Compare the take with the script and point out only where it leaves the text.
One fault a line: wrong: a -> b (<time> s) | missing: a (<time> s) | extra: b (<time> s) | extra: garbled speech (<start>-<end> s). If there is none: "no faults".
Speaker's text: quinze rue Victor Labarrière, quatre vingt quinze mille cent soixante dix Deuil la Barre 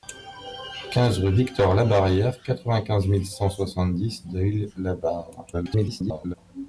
extra: garbled speech (5.5-6.3 s)